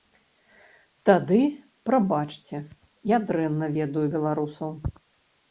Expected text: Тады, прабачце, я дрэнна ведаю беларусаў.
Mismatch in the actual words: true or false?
false